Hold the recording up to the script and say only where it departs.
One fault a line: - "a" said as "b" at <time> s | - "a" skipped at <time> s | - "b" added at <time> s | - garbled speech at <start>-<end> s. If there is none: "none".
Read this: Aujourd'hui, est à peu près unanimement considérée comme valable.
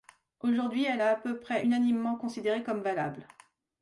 - "elle" added at 0.8 s